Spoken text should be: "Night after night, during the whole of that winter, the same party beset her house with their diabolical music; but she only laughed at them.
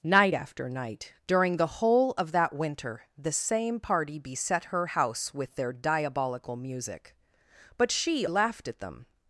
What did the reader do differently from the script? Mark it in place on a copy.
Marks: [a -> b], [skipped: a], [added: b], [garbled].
"Night after night, during the whole of that winter, the same party beset her house with their diabolical music; but she [skipped: only] laughed at them.